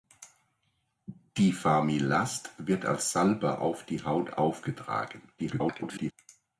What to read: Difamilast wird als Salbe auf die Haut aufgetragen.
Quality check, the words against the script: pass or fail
fail